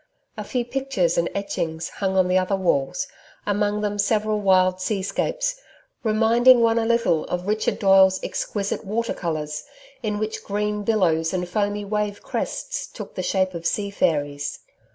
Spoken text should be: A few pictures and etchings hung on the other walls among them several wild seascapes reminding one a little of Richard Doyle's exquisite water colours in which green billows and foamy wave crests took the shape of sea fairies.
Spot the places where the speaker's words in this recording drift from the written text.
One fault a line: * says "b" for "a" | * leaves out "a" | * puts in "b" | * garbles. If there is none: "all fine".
all fine